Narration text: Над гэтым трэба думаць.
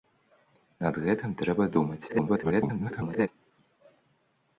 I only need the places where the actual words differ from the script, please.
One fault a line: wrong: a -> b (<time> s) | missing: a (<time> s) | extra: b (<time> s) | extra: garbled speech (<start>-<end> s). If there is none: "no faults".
extra: garbled speech (2.1-3.3 s)